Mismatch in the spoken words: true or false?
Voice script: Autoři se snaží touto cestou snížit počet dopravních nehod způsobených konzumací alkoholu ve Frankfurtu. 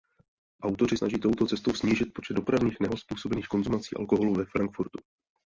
true